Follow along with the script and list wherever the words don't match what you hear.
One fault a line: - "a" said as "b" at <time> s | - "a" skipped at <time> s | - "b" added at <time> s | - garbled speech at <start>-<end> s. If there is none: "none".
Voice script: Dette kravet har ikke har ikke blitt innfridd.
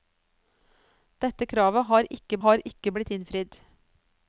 none